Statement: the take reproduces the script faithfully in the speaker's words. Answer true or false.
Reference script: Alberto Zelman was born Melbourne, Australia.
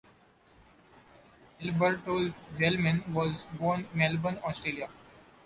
true